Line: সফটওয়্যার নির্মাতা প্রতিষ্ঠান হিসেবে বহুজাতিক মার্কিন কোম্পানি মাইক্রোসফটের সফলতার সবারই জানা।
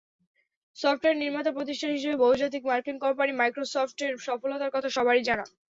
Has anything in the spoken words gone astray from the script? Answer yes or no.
yes